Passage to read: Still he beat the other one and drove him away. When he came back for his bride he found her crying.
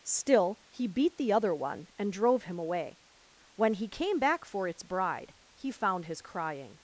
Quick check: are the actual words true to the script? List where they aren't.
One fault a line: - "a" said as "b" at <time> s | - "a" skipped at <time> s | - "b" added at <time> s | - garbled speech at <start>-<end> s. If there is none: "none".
- "his" said as "its" at 4.7 s
- "her" said as "his" at 6.1 s